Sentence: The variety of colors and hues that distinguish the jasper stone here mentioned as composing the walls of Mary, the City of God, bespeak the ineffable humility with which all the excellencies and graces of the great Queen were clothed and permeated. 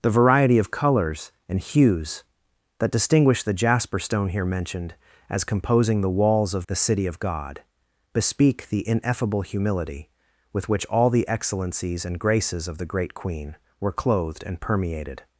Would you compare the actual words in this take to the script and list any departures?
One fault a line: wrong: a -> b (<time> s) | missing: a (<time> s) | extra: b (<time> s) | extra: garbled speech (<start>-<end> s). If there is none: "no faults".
missing: Mary (6.7 s)